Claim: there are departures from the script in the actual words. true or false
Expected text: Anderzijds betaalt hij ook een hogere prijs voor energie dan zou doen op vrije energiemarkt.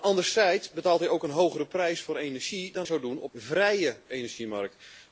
false